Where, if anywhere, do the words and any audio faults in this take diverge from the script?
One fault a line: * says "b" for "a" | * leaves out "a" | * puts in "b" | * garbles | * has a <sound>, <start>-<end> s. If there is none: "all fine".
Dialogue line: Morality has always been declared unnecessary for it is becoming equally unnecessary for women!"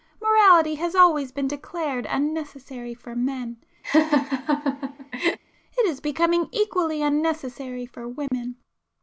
* puts in "men"
* has a laugh, 3.8-5.4 s
* has a dropout, 8.3-8.3 s